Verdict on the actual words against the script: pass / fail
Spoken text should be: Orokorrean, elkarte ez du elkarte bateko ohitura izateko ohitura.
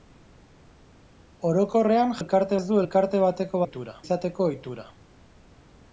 pass